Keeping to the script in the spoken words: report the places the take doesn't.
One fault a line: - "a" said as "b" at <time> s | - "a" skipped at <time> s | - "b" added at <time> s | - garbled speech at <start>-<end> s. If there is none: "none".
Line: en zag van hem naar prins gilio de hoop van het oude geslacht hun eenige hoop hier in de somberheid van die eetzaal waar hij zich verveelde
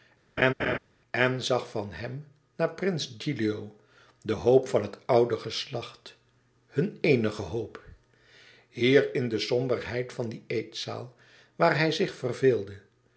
none